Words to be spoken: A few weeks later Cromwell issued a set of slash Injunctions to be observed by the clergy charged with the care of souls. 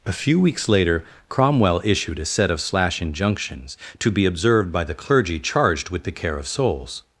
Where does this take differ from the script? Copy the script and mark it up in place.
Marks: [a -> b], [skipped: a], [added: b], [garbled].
A few weeks later Cromwell issued a set of slash Injunctions to be observed by the clergy charged with the care of souls.